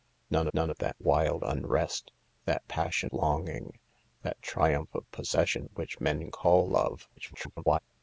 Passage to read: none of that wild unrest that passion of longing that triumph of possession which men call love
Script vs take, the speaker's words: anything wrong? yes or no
yes